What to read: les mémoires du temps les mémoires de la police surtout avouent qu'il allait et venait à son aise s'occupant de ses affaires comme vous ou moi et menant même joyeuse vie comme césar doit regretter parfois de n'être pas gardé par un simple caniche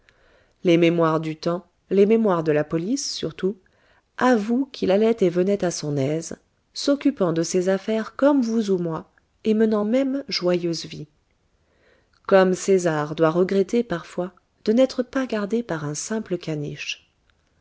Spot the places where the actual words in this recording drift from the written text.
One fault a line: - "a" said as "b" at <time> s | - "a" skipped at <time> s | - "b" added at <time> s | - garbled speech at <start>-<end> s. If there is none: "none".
none